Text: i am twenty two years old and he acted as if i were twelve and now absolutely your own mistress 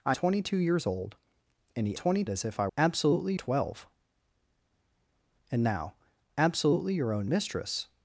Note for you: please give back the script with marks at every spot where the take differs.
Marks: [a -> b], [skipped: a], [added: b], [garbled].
i [skipped: am] twenty two years old and he [acted -> twenty] as if i [were -> absolutely] twelve and now absolutely your own mistress